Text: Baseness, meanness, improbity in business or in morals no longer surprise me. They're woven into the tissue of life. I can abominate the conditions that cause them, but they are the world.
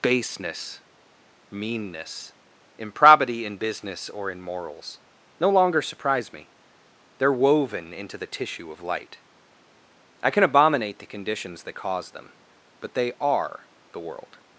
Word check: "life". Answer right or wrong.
wrong